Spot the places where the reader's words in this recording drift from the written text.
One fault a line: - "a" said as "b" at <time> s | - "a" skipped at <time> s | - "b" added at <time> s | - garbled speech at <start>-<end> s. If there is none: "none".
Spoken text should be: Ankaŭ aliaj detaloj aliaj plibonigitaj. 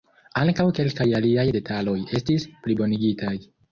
- "kelkaj" added at 0.8 s
- "aliaj" said as "estis" at 2.2 s